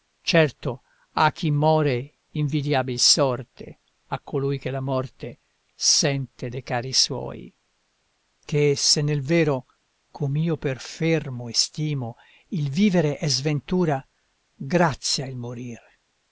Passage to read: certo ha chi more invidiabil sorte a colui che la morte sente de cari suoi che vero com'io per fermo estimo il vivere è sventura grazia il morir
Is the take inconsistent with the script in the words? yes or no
yes